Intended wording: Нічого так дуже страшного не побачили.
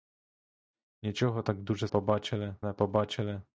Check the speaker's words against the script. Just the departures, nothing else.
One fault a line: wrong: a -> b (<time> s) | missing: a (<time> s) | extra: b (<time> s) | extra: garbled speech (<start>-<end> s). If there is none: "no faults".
wrong: страшного -> побачили (1.9 s)